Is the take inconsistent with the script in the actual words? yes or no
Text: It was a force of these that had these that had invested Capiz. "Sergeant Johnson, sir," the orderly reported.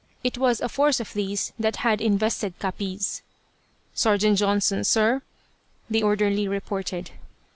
yes